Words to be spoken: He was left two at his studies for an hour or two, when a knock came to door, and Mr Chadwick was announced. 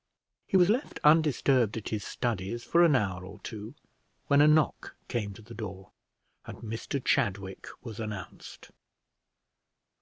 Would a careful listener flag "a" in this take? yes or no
no